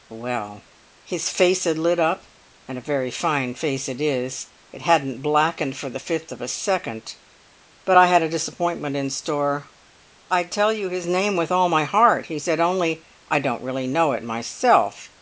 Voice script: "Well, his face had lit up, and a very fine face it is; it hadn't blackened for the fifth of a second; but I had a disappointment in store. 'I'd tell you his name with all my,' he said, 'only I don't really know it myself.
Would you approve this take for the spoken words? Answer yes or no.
no